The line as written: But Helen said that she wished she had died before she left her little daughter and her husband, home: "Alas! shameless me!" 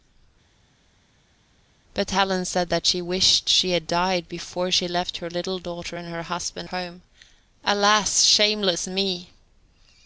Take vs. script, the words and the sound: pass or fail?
pass